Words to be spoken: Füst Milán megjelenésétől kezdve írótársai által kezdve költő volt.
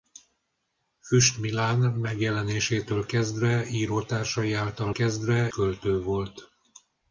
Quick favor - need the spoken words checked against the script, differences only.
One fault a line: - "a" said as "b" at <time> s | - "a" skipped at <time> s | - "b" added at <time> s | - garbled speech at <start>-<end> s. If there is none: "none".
none